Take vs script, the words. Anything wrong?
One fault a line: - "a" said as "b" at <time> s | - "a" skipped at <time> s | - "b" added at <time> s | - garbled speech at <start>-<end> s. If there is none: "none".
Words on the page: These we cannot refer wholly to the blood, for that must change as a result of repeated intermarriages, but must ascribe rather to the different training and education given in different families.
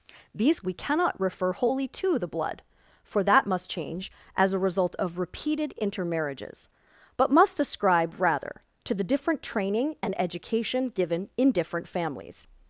none